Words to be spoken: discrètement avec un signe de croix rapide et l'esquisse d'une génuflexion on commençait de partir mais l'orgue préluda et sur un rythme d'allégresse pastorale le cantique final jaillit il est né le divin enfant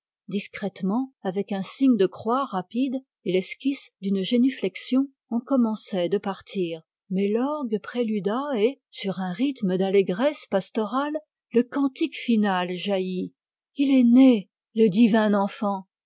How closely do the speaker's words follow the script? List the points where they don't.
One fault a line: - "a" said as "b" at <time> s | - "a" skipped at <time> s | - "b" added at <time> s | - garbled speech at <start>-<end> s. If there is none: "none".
none